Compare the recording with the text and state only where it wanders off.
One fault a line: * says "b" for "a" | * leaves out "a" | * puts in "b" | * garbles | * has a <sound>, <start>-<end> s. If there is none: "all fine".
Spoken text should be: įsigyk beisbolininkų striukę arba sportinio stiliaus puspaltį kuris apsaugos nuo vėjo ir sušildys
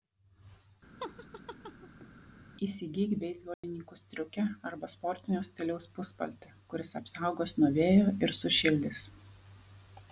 * has a laugh, 1.0-2.1 s
* has a dropout, 3.5-3.6 s